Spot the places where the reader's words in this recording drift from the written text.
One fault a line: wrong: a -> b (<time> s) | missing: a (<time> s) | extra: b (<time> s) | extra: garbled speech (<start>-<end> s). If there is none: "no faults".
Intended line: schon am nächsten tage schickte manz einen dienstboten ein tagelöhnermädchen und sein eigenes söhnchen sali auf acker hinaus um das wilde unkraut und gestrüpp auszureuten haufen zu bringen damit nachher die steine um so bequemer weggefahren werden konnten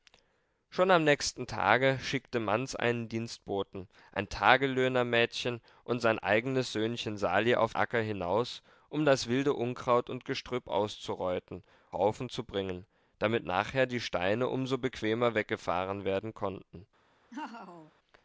no faults